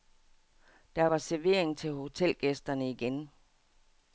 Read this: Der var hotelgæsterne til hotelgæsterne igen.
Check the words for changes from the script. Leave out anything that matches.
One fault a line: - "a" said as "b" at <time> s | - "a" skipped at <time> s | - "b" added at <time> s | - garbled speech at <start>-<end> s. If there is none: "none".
- "hotelgæsterne" said as "servering" at 1.2 s